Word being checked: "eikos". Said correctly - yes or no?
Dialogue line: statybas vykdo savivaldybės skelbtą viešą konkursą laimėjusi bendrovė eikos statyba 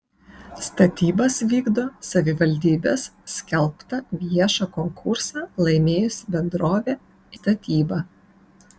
no